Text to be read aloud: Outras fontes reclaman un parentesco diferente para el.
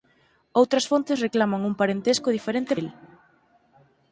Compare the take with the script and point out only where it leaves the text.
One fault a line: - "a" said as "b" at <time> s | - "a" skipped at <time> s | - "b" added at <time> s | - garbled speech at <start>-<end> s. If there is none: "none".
- "para" skipped at 2.7 s